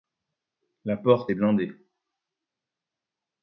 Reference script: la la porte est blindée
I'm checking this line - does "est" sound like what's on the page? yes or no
yes